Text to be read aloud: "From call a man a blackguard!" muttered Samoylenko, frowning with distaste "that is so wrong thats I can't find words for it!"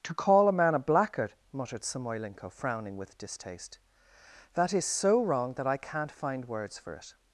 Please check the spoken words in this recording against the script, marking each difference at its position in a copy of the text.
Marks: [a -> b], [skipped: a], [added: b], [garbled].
["From -> To] call a man a blackguard!" muttered Samoylenko, frowning with distaste "that is so wrong [thats -> that] I can't find words for it!"